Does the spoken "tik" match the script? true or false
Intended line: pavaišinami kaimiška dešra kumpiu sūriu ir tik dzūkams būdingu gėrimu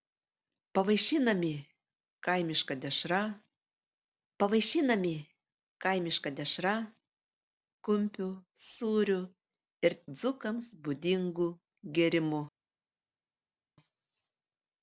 false